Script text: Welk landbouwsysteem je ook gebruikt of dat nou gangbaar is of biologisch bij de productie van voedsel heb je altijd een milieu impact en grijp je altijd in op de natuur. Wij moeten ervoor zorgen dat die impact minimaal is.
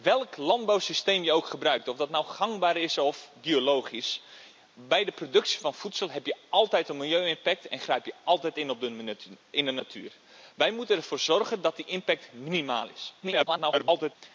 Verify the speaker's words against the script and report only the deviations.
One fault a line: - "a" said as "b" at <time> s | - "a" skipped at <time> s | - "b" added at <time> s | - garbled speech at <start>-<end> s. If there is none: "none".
- garbled speech at 13.2-14.2 s